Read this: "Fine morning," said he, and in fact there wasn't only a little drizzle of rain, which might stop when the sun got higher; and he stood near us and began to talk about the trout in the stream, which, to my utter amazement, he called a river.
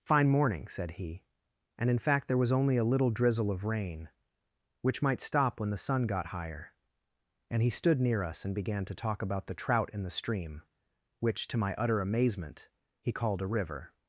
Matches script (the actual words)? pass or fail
fail